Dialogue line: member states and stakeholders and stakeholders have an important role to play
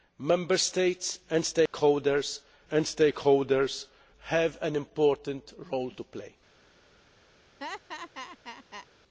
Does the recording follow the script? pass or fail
pass